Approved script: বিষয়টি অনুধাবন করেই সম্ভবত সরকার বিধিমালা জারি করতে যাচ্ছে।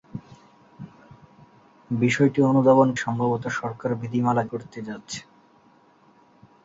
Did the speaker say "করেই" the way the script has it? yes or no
no